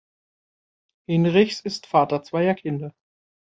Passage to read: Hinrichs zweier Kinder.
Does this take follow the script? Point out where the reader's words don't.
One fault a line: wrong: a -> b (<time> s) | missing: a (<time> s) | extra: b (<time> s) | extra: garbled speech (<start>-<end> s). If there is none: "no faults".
extra: ist Vater (1.6 s)